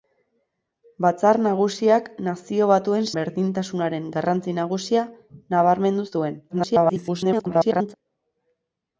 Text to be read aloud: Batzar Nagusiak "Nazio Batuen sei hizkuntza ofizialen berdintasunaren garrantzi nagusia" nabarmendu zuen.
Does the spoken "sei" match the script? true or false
false